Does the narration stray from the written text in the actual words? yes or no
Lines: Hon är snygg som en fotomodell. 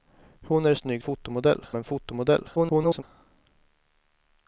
yes